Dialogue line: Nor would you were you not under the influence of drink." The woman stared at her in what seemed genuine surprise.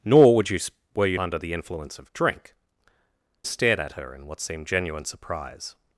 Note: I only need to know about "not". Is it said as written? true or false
false